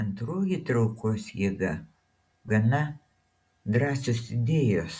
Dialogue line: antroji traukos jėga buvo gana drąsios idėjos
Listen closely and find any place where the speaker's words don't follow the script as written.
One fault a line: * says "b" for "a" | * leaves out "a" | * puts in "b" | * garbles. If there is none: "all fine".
* leaves out "buvo"